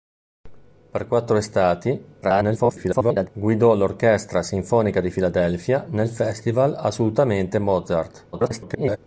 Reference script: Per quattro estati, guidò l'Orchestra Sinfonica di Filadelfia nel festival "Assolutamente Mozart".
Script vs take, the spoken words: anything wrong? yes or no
yes